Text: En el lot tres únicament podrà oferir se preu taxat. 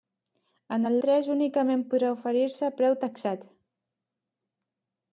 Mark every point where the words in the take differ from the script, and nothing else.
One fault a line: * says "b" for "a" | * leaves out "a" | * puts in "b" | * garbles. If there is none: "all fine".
* leaves out "lot"